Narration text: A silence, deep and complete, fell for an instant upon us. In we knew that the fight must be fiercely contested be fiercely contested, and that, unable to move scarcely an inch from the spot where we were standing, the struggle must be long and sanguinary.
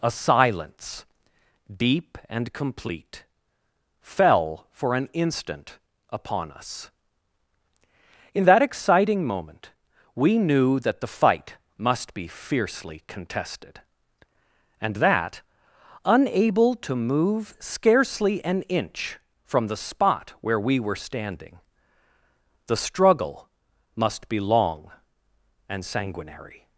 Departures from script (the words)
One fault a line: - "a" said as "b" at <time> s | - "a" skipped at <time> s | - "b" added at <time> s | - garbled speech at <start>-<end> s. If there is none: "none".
- "that exciting moment" added at 8.4 s
- "be fiercely contested" skipped at 13.8 s